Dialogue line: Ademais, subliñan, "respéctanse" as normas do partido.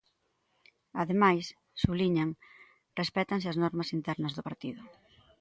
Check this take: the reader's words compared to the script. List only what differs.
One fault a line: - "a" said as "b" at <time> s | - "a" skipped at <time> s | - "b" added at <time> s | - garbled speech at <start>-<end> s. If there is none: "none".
- "internas" added at 4.0 s